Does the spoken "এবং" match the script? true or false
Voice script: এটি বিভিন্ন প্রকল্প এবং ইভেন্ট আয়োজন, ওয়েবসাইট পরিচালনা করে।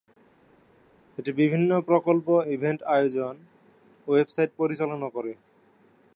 false